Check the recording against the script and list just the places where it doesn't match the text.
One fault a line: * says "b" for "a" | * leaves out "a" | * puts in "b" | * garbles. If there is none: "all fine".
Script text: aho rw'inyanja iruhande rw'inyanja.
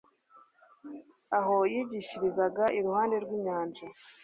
* says "yigishirizaga" for "rw'inyanja"